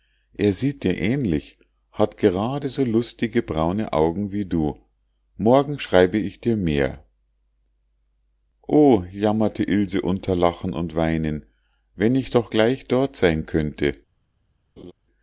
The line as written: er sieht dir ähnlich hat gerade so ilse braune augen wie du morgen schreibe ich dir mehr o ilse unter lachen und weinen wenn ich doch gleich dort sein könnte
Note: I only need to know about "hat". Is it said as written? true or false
true